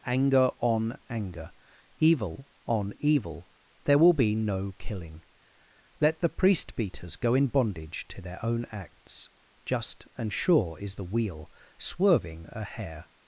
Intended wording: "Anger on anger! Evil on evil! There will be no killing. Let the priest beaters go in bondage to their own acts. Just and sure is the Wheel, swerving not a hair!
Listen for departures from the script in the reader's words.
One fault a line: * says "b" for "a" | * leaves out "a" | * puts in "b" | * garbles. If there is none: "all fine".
* leaves out "not"